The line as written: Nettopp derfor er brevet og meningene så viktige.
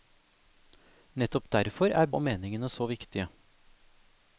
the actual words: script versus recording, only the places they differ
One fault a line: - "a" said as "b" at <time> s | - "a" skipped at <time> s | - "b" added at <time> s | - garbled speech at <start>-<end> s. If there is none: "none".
- "brevet" skipped at 2.1 s